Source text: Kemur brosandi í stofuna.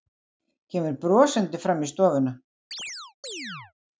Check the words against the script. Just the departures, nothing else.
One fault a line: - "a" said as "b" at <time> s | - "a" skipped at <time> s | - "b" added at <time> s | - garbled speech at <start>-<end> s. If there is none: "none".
- "fram" added at 1.7 s